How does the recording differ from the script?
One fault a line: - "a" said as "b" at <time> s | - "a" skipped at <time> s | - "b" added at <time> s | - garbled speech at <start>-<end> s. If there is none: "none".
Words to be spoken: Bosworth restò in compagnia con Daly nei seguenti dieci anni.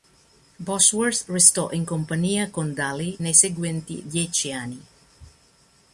none